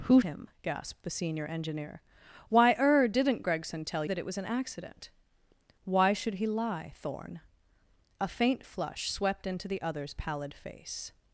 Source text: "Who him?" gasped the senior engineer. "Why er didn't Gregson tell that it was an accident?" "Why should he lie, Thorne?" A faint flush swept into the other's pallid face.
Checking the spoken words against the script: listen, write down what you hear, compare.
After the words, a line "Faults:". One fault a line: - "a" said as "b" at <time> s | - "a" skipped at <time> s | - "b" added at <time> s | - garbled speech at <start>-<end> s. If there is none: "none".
"Who him?" gasped the senior engineer. "Why er didn't Gregson tell that it was an accident?" "Why should he lie, Thorne?" A faint flush swept into the other's pallid face.
Faults:
none